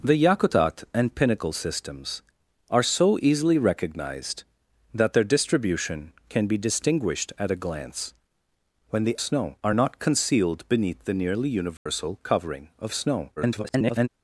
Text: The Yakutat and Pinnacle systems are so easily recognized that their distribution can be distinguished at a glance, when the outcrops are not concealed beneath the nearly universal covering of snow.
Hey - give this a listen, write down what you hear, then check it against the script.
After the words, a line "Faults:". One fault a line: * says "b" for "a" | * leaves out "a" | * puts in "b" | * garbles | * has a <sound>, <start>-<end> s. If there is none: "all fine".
The Yakutat and Pinnacle systems are so easily recognized that their distribution can be distinguished at a glance, when the snow are not concealed beneath the nearly universal covering of snow. [garbled]
Faults:
* says "snow" for "outcrops"
* has a dropout, 11.8-11.9 s
* garbles